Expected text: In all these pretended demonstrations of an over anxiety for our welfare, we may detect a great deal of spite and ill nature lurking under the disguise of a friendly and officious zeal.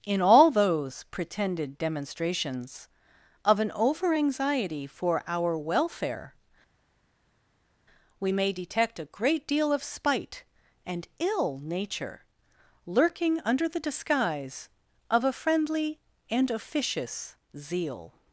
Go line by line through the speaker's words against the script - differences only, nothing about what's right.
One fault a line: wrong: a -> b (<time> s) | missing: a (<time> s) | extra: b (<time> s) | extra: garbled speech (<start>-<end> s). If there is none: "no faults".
wrong: these -> those (0.5 s)